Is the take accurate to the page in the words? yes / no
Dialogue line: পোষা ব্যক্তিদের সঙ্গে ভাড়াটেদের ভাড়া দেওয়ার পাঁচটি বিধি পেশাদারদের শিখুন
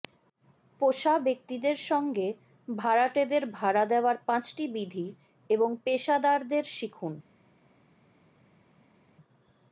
no